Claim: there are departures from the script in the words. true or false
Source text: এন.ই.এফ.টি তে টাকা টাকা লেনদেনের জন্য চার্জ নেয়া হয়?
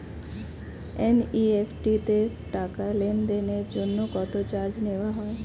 true